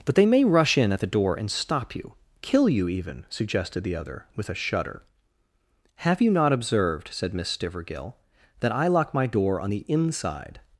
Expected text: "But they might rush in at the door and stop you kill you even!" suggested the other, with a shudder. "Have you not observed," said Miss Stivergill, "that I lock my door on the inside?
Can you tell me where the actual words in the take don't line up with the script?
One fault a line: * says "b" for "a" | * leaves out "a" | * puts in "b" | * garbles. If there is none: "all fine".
* says "may" for "might"